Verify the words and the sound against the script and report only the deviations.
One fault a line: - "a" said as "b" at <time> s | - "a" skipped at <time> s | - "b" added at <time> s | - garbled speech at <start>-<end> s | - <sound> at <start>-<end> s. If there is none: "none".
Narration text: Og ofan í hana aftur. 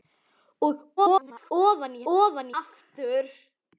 - garbled speech at 1.0-1.5 s
- "hana" said as "ofan" at 2.1 s